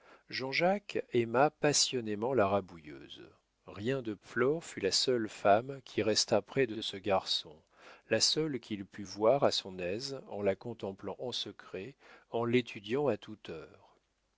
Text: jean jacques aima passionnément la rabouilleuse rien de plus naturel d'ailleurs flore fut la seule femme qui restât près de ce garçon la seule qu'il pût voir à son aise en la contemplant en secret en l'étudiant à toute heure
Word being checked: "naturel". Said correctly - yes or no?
no